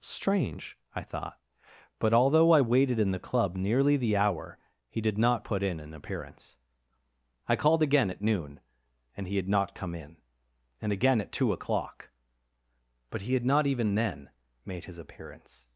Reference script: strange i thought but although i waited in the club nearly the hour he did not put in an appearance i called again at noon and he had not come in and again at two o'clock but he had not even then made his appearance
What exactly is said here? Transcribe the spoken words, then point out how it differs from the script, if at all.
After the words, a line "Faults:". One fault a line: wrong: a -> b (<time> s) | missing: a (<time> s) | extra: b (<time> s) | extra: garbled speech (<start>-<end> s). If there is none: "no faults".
strange i thought but although i waited in the club nearly the hour he did not put in an appearance i called again at noon and he had not come in and again at two o'clock but he had not even then made his appearance
Faults:
no faults